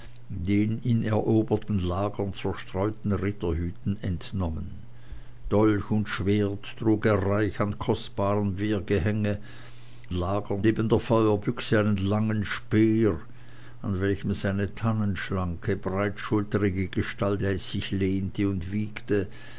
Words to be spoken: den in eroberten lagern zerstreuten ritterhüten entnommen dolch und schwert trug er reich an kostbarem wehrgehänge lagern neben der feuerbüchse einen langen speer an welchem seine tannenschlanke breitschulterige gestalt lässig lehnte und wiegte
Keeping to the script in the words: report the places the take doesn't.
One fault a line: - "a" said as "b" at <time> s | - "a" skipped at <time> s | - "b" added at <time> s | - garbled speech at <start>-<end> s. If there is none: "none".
none